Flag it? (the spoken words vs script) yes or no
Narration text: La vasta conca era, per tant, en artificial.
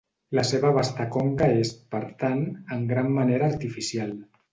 yes